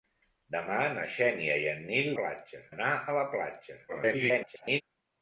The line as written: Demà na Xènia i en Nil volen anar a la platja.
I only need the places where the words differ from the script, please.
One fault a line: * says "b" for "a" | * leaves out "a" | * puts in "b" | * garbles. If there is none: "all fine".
* says "platja" for "volen"
* garbles